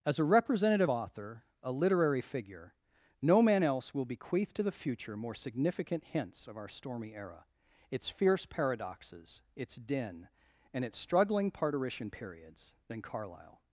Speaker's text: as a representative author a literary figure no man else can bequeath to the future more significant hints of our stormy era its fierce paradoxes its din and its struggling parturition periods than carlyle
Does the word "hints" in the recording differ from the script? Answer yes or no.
no